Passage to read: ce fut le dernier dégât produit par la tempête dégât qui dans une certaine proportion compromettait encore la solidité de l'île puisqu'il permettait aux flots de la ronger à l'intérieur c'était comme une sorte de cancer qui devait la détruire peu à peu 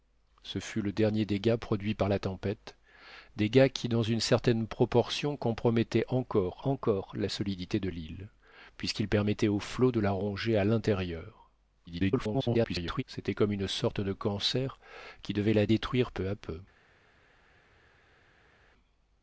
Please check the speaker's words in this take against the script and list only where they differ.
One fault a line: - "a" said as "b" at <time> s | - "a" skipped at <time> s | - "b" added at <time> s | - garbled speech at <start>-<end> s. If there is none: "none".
- "encore" added at 6.6 s
- garbled speech at 11.9-13.0 s